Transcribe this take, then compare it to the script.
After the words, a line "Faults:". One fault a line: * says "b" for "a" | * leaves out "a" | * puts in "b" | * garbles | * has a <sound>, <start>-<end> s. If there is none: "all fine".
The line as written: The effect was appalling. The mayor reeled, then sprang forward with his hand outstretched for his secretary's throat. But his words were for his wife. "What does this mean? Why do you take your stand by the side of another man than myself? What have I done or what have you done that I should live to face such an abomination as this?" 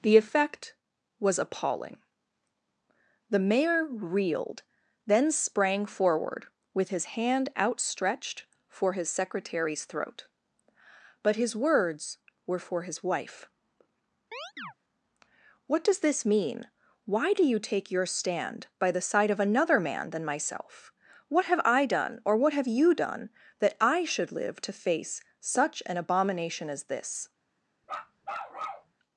The effect was appalling. The mayor reeled, then sprang forward with his hand outstretched for his secretary's throat. But his words were for his wife. "What does this mean? Why do you take your stand by the side of another man than myself? What have I done or what have you done that I should live to face such an abomination as this?"
Faults:
* has a chirp, 14.3-14.7 s
* has a bark, 27.8-28.9 s